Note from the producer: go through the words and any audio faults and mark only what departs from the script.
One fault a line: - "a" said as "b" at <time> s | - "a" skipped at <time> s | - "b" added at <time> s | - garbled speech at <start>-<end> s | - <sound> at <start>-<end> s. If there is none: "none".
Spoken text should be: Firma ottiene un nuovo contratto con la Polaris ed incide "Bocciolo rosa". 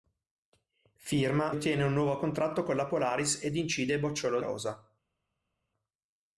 none